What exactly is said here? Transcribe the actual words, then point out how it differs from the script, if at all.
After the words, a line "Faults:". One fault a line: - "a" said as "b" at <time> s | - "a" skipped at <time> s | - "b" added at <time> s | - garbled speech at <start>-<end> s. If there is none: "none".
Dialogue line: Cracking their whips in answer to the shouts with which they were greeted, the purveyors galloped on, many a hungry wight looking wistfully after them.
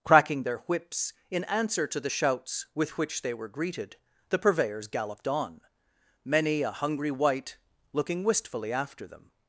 Cracking their whips in answer to the shouts with which they were greeted, the purveyors galloped on, many a hungry wight looking wistfully after them.
Faults:
none